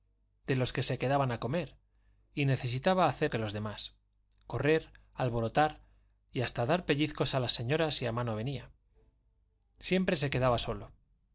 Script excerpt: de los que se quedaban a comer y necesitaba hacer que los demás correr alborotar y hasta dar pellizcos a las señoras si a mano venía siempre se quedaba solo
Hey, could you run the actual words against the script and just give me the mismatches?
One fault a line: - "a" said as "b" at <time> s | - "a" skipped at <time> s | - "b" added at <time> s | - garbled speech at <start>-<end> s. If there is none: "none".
none